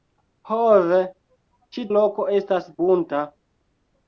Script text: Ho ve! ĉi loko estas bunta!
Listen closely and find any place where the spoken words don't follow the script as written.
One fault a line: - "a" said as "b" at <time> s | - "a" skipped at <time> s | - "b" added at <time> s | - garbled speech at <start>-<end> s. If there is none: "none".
none